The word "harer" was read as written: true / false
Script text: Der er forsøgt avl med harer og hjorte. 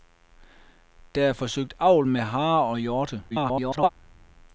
true